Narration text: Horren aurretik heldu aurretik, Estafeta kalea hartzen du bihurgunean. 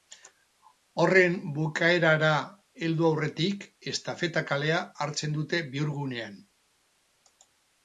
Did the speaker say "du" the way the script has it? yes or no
no